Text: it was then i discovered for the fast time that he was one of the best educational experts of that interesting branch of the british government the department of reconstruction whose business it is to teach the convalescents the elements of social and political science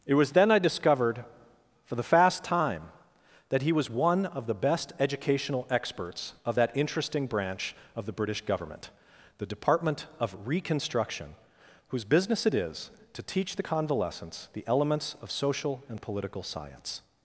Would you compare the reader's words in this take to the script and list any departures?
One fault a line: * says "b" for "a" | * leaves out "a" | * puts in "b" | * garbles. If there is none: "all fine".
all fine